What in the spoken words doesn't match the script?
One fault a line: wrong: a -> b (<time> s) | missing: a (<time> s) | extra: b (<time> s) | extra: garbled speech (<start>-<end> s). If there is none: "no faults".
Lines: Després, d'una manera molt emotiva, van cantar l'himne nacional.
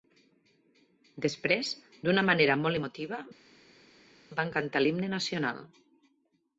no faults